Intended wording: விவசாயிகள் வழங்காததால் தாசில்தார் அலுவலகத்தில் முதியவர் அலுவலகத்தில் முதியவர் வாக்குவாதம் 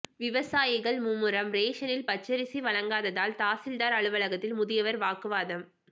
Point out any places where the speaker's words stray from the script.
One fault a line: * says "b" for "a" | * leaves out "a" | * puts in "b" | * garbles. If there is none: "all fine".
* puts in "மும்முரம் ரேஷனில் பச்சரிசி"
* leaves out "அலுவலகத்தில் முதியவர்"